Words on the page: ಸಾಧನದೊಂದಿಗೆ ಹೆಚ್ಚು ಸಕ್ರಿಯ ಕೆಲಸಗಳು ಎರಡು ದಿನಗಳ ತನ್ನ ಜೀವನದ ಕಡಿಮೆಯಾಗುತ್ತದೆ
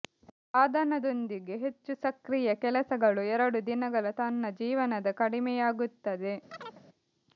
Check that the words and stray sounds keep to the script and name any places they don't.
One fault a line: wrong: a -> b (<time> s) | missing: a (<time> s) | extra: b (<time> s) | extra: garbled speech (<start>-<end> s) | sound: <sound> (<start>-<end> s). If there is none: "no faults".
sound: chirp (6.5-6.8 s)